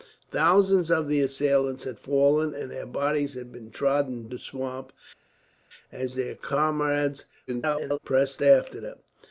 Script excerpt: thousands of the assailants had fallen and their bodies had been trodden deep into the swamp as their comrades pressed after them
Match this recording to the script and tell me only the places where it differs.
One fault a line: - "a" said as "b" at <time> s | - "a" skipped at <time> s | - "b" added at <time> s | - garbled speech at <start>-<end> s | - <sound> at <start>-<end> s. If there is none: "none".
- "deep into" skipped at 4.3 s
- garbled speech at 7.5-8.0 s